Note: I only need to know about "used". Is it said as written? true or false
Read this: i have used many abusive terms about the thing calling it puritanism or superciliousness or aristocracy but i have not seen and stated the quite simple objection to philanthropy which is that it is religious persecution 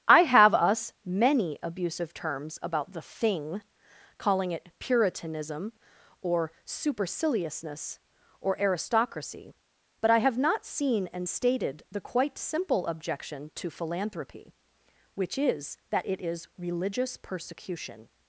false